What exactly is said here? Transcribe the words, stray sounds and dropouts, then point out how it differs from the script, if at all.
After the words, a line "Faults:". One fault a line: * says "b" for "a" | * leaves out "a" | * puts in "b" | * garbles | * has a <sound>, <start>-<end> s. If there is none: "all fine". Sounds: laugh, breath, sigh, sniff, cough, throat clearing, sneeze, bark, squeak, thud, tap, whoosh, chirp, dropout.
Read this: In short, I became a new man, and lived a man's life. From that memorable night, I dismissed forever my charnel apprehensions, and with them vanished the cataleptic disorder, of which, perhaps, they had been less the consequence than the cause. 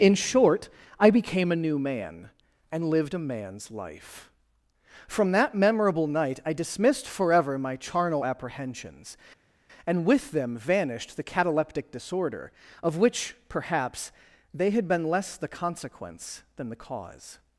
In short, I became a new man, and lived a man's life. From that memorable night, I dismissed forever my charnel apprehensions, and with them vanished the cataleptic disorder, of which, perhaps, they had been less the consequence than the cause.
Faults:
all fine